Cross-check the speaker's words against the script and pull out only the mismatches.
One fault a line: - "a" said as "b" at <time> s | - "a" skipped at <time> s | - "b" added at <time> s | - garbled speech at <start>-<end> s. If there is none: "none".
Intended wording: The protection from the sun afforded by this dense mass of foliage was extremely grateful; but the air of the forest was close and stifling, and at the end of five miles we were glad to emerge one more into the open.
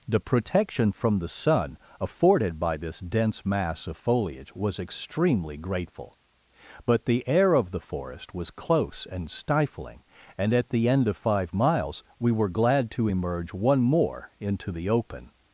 none